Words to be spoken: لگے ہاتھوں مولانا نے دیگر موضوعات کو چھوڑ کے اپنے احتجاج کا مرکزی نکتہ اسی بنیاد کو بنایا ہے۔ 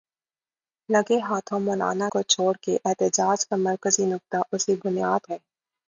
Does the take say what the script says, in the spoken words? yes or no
no